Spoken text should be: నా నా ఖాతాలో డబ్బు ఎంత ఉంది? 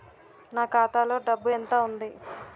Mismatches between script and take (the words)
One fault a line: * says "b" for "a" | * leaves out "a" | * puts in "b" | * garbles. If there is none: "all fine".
* leaves out "నా"